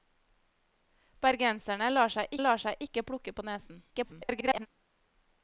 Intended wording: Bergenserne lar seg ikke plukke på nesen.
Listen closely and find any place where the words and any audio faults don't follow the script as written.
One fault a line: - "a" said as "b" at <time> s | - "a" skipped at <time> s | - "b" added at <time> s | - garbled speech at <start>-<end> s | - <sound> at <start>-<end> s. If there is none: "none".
- "lar seg" added at 2.4 s
- garbled speech at 3.9-4.7 s